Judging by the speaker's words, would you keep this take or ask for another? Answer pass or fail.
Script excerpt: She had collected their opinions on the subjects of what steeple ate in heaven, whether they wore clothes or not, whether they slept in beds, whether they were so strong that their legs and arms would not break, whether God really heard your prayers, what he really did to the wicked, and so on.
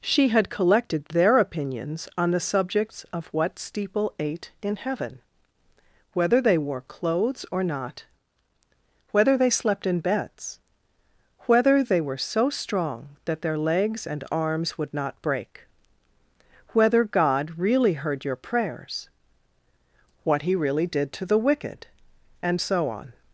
pass